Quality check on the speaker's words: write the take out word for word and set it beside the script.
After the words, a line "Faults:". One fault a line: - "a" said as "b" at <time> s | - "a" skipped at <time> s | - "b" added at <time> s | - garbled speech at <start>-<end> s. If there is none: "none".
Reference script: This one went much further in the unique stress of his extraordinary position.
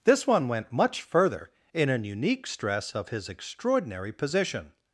This one went much further in an unique stress of his extraordinary position.
Faults:
- "the" said as "an" at 1.9 s